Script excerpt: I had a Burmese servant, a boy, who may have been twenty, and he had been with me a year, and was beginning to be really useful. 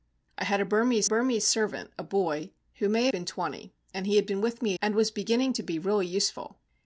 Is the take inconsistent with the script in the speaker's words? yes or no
yes